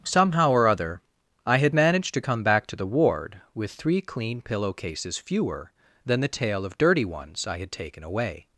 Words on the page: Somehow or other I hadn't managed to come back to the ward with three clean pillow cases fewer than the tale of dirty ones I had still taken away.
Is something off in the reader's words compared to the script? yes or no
yes